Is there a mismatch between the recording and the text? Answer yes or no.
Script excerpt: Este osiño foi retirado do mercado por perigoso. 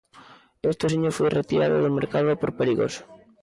no